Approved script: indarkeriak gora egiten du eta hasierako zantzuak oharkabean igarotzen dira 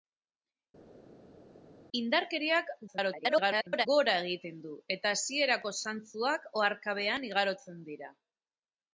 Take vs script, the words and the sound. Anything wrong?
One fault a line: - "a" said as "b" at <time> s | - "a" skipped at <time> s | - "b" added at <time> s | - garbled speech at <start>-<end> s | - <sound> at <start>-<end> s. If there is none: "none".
- garbled speech at 2.9-3.9 s